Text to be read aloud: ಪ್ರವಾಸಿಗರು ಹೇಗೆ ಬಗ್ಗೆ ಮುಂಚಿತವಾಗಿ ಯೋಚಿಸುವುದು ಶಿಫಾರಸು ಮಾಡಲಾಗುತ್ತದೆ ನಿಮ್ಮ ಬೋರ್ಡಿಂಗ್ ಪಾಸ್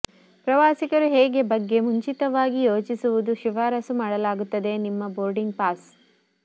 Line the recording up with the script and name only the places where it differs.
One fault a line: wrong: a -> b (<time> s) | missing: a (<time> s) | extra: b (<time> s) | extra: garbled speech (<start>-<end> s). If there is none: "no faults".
no faults